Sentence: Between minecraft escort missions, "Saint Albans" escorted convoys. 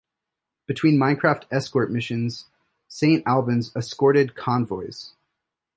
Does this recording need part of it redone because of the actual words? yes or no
no